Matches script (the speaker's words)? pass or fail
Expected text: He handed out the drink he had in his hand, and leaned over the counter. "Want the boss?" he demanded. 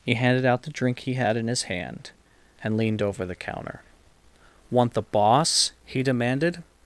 pass